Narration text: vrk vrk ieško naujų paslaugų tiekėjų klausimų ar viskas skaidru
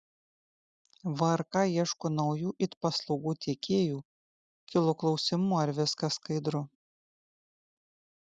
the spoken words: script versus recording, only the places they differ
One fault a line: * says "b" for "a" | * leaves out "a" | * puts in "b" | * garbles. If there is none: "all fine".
* leaves out "vrk"
* puts in "it"
* puts in "kilo"